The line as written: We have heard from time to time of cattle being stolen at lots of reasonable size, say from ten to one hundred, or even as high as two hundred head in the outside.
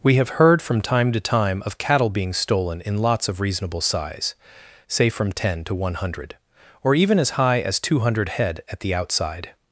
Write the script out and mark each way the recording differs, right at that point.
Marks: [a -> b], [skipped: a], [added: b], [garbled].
We have heard from time to time of cattle being stolen [at -> in] lots of reasonable size, say from ten to one hundred, or even as high as two hundred head [in -> at] the outside.